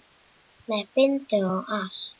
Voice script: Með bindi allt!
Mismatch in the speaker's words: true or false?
true